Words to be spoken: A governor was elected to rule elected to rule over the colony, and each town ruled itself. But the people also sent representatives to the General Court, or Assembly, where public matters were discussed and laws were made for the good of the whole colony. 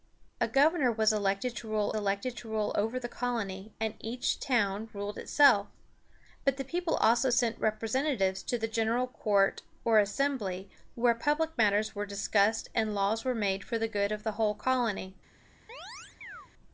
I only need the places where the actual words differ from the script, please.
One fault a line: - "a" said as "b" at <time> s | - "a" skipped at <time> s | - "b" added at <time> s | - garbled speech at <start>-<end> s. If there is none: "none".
none